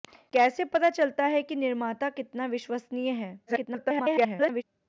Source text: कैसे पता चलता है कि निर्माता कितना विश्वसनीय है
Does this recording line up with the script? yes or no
no